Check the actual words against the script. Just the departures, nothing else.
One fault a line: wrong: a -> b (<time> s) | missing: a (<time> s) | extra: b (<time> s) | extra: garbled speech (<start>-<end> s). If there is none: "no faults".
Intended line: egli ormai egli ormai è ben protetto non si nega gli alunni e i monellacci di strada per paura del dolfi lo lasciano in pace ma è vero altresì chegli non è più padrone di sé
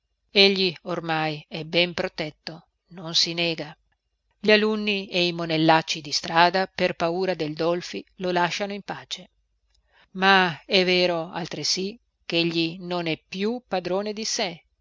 missing: egli ormai (1.4 s)